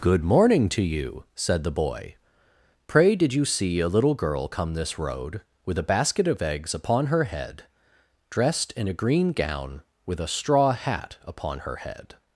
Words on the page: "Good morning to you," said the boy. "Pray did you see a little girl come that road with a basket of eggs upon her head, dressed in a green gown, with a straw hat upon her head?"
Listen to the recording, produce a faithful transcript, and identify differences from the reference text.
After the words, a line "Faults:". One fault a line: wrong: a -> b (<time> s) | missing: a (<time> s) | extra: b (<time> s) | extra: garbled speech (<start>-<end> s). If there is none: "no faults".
"Good morning to you," said the boy. "Pray did you see a little girl come this road with a basket of eggs upon her head, dressed in a green gown, with a straw hat upon her head?"
Faults:
wrong: that -> this (4.7 s)